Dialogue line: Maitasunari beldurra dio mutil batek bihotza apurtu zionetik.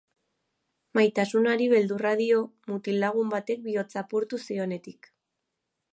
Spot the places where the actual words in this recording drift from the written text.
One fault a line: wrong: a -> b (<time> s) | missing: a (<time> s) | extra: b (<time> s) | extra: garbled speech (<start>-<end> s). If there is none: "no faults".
extra: lagun (3.0 s)